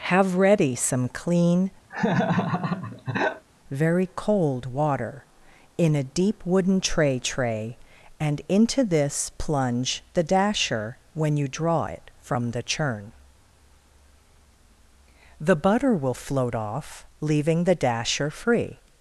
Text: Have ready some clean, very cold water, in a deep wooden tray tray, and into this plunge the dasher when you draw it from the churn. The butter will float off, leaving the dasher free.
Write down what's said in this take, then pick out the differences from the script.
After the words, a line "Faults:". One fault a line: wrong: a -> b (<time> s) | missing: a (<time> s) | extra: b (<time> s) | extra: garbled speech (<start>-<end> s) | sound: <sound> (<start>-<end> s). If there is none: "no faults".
Have ready some clean, very cold water, in a deep wooden tray tray, and into this plunge the dasher when you draw it from the churn. The butter will float off, leaving the dasher free.
Faults:
sound: laugh (1.9-3.4 s)